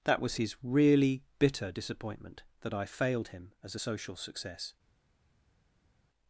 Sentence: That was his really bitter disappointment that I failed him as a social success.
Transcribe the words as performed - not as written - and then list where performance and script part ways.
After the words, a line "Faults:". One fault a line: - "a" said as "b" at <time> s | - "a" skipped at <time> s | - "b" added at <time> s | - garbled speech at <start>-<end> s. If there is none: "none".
That was his really bitter disappointment that I failed him as a social success.
Faults:
none